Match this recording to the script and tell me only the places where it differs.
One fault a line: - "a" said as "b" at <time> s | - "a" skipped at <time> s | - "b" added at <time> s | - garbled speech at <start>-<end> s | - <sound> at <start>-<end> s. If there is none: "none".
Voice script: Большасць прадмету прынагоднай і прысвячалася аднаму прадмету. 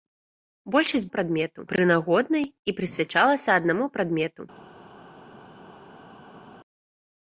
none